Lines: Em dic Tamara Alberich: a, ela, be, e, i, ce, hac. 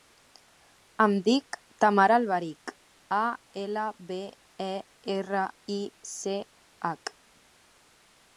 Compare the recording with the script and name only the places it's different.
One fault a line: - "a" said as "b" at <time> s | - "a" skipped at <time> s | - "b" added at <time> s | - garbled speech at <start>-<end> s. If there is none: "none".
- "erra" added at 5.2 s